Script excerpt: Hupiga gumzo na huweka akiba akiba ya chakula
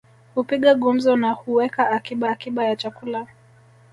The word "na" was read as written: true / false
true